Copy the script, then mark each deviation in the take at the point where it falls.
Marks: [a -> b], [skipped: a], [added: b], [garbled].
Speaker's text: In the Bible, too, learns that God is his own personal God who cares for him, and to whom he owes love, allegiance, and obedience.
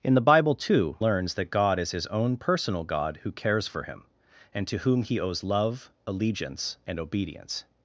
In the Bible, too, learns that God is his own personal God who cares for him, and to whom he owes love, allegiance, and obedience.